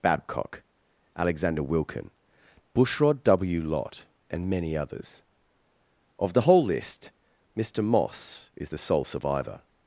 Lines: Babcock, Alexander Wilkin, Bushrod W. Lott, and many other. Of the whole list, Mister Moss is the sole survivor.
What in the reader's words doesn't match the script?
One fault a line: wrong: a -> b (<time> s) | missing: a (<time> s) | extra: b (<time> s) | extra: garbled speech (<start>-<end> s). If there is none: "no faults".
wrong: other -> others (4.8 s)